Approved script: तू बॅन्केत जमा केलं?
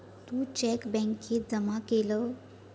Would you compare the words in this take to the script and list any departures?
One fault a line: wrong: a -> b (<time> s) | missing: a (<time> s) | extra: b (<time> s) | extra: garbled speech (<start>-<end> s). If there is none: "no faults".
extra: चेक (0.6 s)